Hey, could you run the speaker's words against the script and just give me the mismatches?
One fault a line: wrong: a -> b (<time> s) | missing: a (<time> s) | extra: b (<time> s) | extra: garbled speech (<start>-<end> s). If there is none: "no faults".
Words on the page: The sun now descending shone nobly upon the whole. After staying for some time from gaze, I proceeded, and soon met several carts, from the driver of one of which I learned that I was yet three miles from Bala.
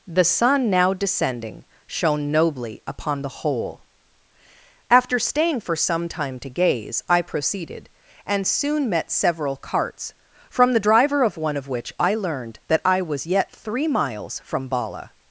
wrong: from -> to (6.4 s)